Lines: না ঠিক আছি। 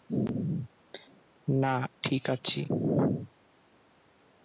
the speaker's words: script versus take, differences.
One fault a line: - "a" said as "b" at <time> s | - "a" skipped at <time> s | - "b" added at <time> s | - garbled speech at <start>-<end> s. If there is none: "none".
none